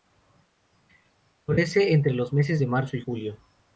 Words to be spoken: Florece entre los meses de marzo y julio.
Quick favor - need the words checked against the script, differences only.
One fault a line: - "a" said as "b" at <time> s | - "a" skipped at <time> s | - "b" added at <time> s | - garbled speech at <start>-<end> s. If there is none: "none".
none